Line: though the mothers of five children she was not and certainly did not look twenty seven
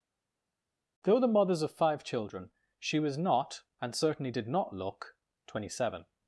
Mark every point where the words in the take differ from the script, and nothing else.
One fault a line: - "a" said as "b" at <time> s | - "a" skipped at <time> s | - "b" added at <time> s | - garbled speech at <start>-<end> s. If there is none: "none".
none